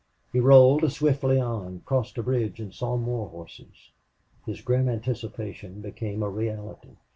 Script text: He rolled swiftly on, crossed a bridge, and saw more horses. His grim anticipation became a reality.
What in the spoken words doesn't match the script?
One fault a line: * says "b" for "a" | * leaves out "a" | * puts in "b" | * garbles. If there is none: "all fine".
all fine